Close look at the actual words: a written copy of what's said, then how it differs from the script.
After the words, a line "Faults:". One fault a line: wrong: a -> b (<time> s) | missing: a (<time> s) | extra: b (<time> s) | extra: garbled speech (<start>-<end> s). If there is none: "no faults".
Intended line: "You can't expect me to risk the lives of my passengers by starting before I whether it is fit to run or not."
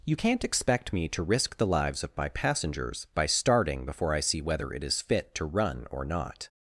"You can't expect me to risk the lives of my passengers by starting before I see whether it is fit to run or not."
Faults:
extra: see (4.2 s)